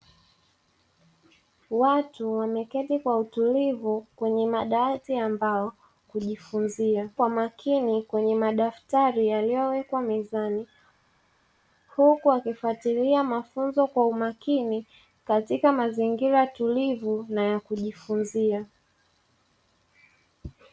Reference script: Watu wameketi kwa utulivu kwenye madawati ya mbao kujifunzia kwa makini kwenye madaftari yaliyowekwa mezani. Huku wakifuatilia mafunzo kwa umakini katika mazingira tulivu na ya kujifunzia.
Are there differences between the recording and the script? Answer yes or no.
no